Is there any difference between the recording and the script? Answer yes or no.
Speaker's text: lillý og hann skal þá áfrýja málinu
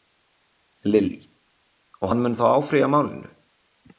yes